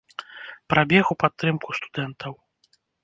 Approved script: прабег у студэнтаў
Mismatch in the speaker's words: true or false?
true